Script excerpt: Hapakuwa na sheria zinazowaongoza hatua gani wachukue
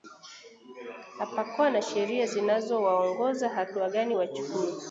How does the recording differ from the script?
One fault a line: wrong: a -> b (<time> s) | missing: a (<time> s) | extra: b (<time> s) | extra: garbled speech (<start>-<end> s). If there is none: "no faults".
no faults